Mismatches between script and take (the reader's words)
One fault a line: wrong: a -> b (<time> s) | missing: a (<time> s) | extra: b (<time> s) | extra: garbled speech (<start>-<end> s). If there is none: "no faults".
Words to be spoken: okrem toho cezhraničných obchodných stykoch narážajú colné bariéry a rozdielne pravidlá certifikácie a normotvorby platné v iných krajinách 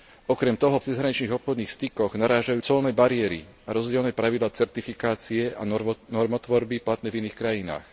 no faults